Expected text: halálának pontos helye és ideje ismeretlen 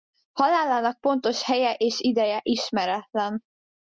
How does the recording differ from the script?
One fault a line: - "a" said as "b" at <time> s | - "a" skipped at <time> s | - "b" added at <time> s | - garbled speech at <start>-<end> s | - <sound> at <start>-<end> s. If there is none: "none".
none